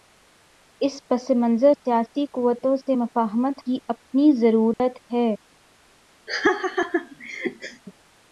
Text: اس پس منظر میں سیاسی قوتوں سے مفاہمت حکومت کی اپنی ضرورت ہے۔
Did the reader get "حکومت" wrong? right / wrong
wrong